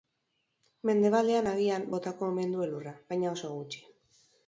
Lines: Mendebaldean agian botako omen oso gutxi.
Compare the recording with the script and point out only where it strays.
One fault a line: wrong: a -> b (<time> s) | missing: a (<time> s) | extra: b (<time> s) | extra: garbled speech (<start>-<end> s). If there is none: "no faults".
extra: du elurra baina (2.6 s)